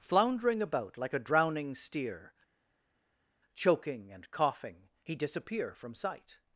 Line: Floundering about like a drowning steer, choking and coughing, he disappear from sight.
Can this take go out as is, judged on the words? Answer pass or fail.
pass